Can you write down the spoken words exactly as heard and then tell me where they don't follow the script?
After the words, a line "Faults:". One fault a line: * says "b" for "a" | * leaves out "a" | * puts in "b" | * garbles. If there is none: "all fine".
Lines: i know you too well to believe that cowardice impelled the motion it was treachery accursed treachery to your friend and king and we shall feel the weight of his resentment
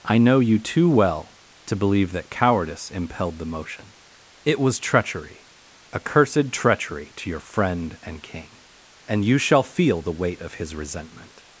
i know you too well to believe that cowardice impelled the motion it was treachery accursed treachery to your friend and king and you shall feel the weight of his resentment
Faults:
* says "you" for "we"